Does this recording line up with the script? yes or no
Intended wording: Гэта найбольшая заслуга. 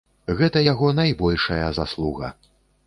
no